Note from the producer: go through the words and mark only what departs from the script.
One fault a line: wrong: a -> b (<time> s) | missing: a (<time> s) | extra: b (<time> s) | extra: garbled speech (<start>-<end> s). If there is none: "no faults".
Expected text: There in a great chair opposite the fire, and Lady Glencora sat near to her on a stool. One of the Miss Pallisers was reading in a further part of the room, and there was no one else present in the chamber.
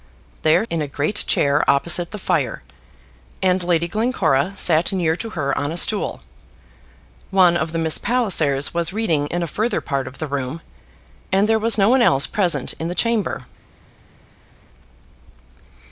no faults